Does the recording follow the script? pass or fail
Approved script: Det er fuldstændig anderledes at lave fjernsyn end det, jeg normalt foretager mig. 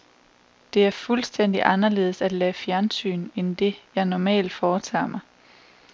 pass